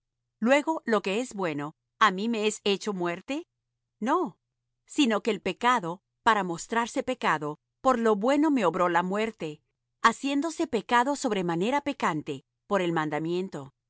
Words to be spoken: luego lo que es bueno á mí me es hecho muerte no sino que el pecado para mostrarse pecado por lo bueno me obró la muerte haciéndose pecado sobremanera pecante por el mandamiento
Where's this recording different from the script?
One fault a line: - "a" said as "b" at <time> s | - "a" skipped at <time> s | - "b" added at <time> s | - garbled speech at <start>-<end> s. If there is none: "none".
none